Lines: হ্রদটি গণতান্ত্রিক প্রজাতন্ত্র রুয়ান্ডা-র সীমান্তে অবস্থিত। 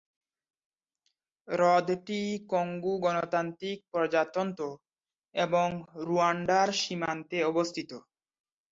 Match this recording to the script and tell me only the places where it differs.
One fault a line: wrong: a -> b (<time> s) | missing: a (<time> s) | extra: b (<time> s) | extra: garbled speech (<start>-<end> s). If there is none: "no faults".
extra: কঙ্গো (2.5 s)
extra: এবং (5.3 s)